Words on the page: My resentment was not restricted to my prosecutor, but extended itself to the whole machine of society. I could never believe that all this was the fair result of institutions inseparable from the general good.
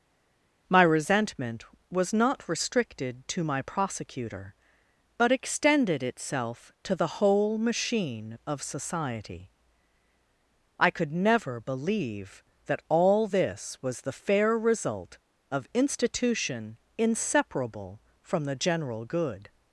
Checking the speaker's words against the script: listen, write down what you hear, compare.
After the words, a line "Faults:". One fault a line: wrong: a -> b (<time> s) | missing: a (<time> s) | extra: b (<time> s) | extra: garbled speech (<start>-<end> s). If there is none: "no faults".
My resentment was not restricted to my prosecutor, but extended itself to the whole machine of society. I could never believe that all this was the fair result of institution inseparable from the general good.
Faults:
wrong: institutions -> institution (15.7 s)